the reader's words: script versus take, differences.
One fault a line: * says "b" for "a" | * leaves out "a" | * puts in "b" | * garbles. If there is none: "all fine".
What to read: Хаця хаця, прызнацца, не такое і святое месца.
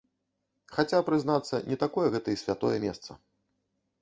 * leaves out "хаця"
* puts in "гэта"